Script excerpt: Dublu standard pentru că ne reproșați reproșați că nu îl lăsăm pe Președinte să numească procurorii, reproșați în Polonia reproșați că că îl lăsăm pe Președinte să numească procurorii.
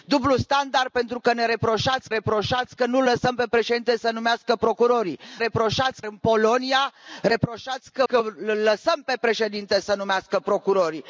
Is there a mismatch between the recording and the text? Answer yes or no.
no